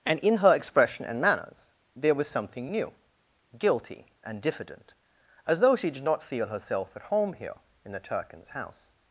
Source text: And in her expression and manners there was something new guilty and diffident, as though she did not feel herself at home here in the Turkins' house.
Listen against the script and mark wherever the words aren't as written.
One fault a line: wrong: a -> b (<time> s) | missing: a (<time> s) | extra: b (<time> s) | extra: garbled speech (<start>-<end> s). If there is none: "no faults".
no faults